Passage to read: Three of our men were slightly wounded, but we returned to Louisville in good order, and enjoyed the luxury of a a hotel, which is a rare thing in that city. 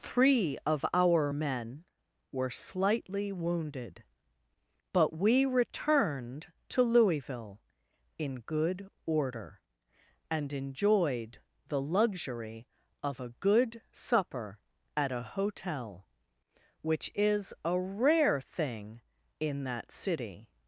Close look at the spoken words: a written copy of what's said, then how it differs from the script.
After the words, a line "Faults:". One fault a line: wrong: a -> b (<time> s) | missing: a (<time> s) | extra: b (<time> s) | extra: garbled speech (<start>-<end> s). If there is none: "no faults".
Three of our men were slightly wounded, but we returned to Louisville in good order, and enjoyed the luxury of a good supper at a hotel, which is a rare thing in that city.
Faults:
extra: good supper at (13.3 s)